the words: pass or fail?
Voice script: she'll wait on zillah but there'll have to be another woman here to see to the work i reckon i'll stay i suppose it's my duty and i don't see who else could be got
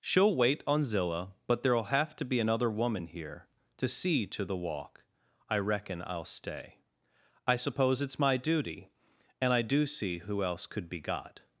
fail